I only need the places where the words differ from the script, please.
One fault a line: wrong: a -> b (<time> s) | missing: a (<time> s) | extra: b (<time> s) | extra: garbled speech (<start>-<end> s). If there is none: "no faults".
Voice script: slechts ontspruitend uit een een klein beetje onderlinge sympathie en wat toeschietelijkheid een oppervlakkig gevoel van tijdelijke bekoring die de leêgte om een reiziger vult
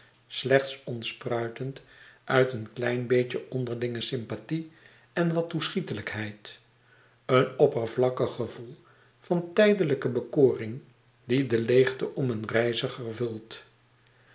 missing: een (2.7 s)